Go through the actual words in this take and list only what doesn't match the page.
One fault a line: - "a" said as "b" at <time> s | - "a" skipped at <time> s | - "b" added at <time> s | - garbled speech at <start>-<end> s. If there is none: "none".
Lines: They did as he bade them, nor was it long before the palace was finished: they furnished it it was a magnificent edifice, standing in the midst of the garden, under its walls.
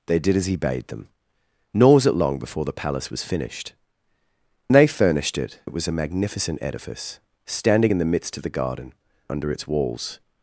none